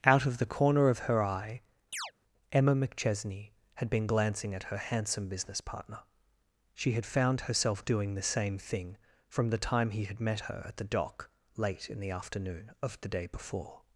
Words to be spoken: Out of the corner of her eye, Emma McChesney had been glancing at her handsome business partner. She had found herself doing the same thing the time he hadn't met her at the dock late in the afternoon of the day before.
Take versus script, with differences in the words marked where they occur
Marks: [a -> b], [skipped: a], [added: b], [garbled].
Out of the corner of her eye, Emma McChesney had been glancing at her handsome business partner. She had found herself doing the same thing [added: from] the time he [hadn't -> had] met her at the dock late in the afternoon of the day before.